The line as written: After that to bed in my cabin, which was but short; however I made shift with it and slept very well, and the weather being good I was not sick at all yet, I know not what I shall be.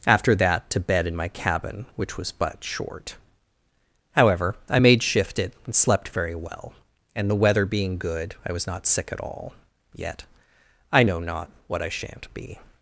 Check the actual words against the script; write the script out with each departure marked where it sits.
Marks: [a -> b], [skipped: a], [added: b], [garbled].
After that to bed in my cabin, which was but short; however I made shift [skipped: with] it and slept very well, and the weather being good I was not sick at all yet, I know not what I [shall -> shan't] be.